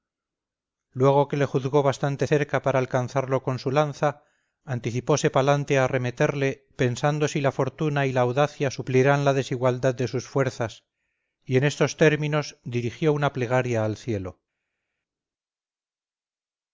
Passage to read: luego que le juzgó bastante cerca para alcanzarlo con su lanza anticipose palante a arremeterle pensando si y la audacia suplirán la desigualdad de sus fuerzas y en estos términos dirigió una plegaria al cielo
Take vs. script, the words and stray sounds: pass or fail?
fail